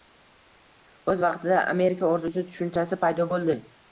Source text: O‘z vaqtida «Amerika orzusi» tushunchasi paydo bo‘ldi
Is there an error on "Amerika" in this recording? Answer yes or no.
no